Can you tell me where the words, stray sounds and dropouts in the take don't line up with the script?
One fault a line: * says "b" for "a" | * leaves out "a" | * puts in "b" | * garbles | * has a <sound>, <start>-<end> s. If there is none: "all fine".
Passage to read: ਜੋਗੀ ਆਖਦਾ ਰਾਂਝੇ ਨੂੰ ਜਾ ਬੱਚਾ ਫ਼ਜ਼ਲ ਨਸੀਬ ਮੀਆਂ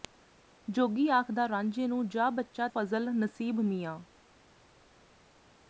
all fine